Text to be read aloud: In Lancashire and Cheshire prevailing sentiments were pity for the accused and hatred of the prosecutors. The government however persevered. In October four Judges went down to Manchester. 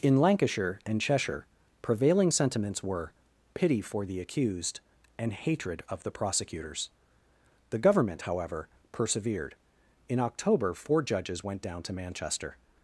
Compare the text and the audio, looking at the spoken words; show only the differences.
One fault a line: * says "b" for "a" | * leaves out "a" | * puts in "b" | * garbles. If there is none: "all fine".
all fine